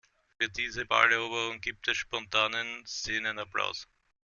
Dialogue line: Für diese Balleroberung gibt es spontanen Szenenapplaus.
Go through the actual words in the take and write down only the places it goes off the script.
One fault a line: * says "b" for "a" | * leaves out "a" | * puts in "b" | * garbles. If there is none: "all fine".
all fine